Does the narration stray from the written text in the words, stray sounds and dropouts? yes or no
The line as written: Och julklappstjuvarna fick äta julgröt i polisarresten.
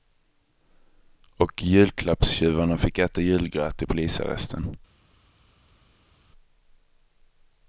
no